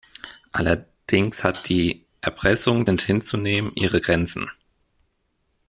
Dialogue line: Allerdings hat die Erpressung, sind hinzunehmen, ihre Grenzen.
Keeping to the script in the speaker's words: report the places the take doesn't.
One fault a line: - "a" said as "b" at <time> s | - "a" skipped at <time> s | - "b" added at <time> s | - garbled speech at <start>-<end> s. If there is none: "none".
none